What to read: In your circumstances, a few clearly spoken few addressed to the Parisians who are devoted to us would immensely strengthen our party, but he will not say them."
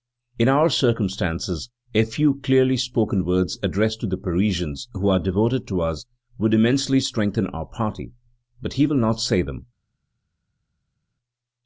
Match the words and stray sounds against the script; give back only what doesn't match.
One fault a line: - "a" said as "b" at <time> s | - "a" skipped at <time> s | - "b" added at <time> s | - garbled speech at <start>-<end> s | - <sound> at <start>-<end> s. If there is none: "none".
- "your" said as "our" at 0.5 s
- "few" said as "words" at 3.3 s